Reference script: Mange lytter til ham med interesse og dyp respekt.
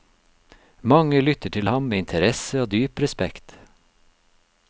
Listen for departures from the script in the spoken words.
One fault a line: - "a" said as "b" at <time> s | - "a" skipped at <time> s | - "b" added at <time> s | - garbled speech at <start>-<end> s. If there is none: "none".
none